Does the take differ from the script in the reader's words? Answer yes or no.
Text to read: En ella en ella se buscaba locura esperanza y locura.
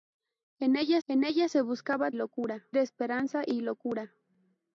no